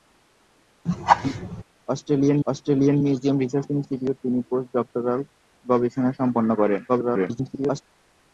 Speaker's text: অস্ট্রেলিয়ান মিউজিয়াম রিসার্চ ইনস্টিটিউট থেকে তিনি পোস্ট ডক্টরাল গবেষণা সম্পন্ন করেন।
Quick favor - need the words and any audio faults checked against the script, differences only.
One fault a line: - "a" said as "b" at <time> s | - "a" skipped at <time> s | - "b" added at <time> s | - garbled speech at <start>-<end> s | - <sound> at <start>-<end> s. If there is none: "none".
- laugh at 0.9-1.6 s
- "অস্ট্রেলিয়ান" added at 2.5 s
- "থেকে" skipped at 4.2 s
- garbled speech at 6.9-7.8 s